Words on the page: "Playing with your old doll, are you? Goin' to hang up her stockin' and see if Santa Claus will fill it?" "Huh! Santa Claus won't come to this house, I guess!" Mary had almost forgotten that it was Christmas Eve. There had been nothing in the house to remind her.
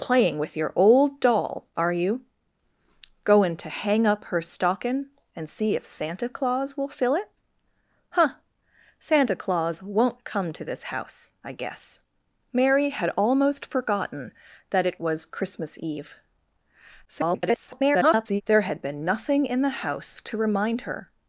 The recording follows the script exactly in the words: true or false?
false